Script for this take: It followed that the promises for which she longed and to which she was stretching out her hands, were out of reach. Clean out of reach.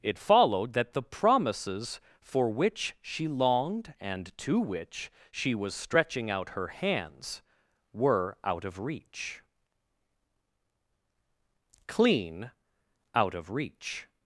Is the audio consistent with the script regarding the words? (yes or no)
yes